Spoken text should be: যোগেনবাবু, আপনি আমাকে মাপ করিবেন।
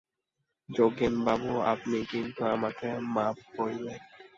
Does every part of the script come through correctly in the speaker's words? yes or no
no